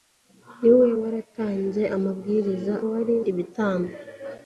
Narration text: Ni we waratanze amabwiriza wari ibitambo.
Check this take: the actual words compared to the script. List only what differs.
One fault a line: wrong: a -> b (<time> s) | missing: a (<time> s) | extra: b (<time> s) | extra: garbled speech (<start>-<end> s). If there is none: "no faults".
no faults